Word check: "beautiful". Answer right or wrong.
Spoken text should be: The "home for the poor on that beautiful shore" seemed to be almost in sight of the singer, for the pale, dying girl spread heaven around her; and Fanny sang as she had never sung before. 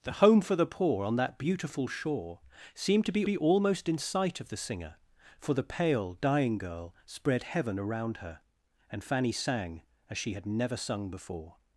right